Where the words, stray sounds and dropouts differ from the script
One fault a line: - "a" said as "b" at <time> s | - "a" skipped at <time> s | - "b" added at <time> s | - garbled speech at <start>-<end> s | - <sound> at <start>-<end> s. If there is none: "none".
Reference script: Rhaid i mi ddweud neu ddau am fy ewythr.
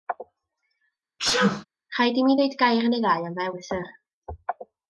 - sneeze at 1.2-1.6 s
- "gair" added at 2.6 s